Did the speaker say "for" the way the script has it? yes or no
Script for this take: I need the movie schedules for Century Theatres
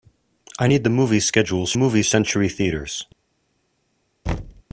no